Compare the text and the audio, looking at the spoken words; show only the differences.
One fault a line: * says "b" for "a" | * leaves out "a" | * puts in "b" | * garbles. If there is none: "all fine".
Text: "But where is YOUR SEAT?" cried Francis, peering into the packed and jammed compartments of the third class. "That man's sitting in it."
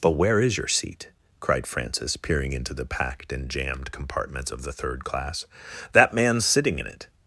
all fine